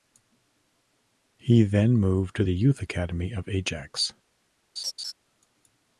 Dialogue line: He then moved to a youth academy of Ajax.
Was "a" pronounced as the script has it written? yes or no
no